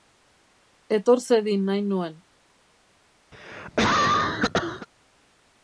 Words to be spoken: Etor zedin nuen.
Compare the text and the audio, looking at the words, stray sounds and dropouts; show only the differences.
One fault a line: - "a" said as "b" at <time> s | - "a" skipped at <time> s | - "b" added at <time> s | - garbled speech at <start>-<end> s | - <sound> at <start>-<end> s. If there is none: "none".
- "nahi" added at 1.7 s
- cough at 3.3-4.9 s